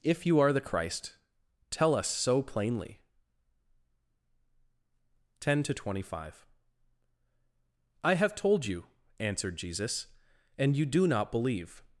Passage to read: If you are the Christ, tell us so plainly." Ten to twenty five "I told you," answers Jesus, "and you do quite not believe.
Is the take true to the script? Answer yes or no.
no